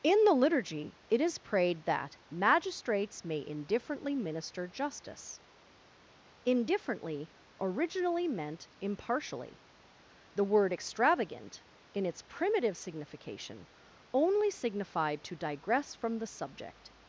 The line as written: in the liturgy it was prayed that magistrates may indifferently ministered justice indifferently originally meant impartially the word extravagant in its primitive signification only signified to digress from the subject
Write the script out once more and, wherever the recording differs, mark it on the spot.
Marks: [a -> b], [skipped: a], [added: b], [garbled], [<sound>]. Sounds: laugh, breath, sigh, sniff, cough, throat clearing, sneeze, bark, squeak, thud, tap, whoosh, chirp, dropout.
in the liturgy it [was -> is] prayed that magistrates may indifferently [ministered -> minister] justice indifferently originally meant impartially the word extravagant in its primitive signification only signified to digress from the subject